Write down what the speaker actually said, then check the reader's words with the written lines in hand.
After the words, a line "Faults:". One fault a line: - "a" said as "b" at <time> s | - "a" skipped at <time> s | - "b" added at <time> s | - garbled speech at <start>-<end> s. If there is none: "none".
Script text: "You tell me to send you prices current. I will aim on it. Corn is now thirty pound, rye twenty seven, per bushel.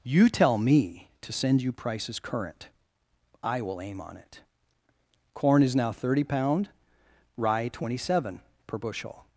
"You tell me to send you prices current. I will aim on it. Corn is now thirty pound, rye twenty seven, per bushel.
Faults:
none